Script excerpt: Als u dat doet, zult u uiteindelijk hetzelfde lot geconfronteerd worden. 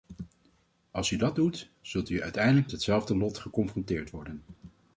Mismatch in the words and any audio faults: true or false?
false